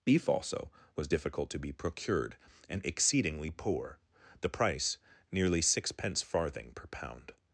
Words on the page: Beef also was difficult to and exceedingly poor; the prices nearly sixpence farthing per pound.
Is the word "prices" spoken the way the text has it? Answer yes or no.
no